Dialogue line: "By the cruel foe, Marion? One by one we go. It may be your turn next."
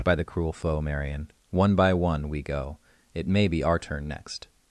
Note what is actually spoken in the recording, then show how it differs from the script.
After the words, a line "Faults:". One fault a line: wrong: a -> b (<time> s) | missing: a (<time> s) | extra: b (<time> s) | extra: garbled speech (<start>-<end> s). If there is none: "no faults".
"By the cruel foe, Marion? One by one we go. It may be our turn next."
Faults:
wrong: your -> our (3.6 s)